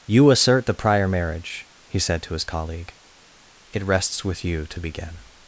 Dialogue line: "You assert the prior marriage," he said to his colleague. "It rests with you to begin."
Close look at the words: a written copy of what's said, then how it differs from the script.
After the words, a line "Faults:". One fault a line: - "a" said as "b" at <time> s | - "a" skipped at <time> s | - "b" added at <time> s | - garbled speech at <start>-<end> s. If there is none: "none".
"You assert the prior marriage," he said to his colleague. "It rests with you to begin."
Faults:
none